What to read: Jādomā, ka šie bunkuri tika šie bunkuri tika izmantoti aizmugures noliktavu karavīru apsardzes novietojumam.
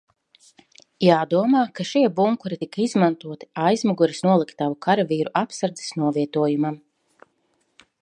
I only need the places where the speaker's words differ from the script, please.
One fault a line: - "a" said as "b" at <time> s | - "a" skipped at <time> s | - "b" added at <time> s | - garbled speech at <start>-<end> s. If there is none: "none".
- "šie bunkuri tika" skipped at 2.8 s